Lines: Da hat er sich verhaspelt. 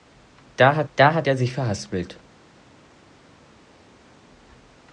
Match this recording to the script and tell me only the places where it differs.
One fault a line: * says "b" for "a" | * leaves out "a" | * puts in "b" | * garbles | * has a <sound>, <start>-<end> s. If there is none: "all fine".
* puts in "da hat"